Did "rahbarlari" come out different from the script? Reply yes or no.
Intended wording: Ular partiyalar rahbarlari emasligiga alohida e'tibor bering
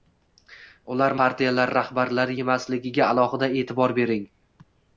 no